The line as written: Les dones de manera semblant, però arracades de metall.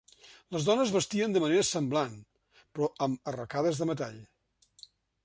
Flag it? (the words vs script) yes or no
yes